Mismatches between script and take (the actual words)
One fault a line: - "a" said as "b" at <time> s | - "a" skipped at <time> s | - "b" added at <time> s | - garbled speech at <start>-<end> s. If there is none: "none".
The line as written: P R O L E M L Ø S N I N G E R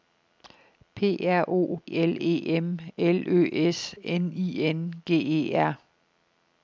none